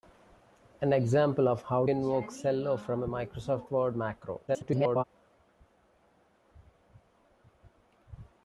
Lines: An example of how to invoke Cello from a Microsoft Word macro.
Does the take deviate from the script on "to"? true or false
true